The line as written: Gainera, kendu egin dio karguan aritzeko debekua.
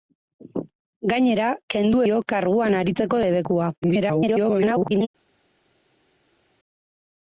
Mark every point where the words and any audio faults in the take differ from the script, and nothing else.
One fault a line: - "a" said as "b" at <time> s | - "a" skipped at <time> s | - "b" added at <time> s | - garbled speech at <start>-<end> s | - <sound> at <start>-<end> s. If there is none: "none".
- "egin" skipped at 2.0 s
- garbled speech at 3.8-5.1 s